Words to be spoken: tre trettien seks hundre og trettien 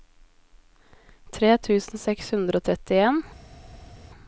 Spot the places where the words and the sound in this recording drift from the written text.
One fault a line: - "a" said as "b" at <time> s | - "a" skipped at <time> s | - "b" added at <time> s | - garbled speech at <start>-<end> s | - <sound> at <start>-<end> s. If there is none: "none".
- "trettien" said as "tusen" at 1.7 s